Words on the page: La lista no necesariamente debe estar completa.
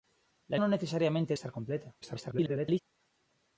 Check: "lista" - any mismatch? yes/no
yes